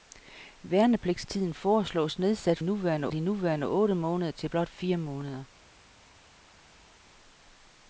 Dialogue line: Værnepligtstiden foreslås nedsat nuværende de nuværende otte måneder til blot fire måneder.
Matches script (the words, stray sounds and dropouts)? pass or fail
pass